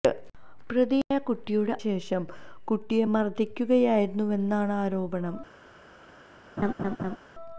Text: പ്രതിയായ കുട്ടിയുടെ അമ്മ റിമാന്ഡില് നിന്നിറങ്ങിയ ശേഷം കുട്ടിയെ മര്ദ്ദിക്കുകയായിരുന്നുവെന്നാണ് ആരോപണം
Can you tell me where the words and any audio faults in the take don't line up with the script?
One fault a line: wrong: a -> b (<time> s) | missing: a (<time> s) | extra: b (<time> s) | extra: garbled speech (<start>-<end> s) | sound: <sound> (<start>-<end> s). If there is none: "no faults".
missing: അമ്മ റിമാന്ഡില് നിന്നിറങ്ങിയ (1.7 s)
sound: laugh (6.6-7.2 s)